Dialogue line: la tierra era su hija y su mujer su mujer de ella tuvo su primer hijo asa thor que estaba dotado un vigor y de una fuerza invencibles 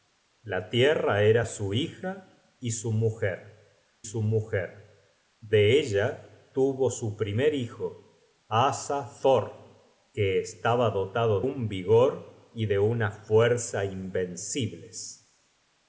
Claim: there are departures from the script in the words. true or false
false